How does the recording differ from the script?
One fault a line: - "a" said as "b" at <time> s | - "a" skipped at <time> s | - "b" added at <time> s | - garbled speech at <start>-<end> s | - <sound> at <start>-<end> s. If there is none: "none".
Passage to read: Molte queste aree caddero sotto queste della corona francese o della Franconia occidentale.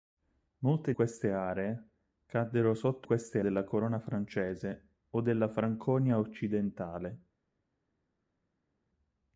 none